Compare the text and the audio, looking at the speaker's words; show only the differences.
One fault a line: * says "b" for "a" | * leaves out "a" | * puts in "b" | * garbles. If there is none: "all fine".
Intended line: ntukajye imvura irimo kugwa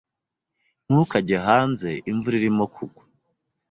* puts in "hanze"